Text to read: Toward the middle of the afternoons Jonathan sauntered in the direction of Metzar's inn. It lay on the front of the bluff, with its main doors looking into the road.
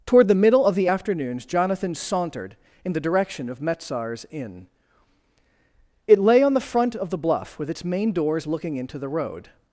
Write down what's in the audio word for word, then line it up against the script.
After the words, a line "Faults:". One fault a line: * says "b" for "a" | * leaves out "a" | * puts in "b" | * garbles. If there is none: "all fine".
Toward the middle of the afternoons Jonathan sauntered in the direction of Metzar's inn. It lay on the front of the bluff, with its main doors looking into the road.
Faults:
all fine